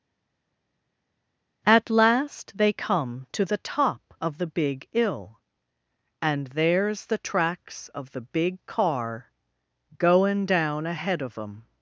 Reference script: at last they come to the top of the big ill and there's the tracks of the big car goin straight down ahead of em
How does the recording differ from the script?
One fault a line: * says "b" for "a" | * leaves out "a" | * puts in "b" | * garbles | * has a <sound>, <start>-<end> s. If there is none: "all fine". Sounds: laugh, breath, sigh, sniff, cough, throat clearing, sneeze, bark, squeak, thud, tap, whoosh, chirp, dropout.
* leaves out "straight"